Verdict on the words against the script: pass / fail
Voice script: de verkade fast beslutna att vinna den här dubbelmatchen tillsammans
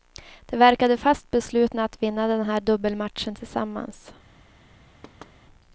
pass